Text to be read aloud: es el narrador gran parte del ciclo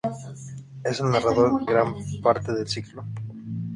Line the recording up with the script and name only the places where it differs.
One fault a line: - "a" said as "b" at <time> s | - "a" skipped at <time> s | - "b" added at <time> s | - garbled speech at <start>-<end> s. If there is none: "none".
none